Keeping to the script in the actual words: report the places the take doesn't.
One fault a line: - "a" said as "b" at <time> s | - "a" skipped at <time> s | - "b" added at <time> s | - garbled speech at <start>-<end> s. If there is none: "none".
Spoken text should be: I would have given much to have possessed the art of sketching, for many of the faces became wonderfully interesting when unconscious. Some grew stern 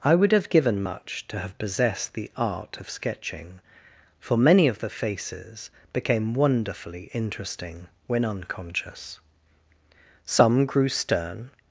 none